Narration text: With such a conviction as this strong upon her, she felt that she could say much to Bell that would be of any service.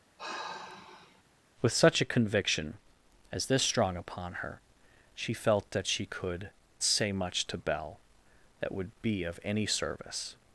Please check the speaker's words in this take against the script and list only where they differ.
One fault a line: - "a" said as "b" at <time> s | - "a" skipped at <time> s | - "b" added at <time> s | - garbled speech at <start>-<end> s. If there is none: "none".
none